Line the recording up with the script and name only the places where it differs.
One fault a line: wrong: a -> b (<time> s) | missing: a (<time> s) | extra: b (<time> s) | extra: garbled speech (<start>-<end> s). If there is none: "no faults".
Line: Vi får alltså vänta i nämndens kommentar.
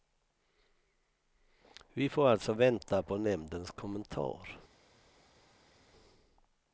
wrong: i -> på (3.0 s)